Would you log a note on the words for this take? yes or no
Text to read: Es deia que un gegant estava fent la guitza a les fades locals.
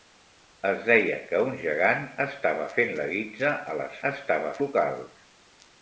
yes